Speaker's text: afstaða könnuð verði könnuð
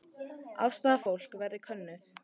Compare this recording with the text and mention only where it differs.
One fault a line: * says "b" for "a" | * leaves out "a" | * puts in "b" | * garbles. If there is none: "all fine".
* says "fólks" for "könnuð"